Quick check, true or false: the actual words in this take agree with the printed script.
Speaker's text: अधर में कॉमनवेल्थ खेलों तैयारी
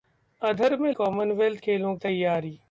true